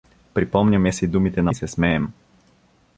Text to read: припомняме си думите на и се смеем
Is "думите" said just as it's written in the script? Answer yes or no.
yes